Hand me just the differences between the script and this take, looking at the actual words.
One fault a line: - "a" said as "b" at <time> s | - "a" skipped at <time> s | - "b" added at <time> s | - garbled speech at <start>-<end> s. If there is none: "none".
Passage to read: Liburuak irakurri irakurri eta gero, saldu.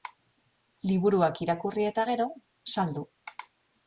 - "irakurri" skipped at 1.9 s